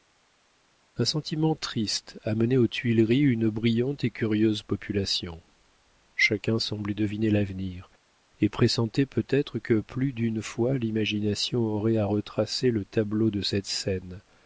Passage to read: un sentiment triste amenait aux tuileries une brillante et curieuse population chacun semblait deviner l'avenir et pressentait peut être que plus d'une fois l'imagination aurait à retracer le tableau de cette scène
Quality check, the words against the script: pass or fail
pass